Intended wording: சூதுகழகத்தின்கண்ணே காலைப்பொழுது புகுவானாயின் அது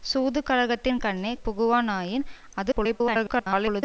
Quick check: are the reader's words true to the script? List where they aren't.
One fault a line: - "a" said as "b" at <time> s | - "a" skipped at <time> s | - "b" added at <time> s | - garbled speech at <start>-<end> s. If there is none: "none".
- "காலைப்பொழுது" skipped at 1.3 s
- garbled speech at 2.7-3.8 s